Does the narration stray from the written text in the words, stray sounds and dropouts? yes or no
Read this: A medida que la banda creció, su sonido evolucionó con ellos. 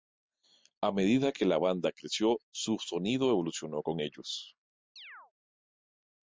yes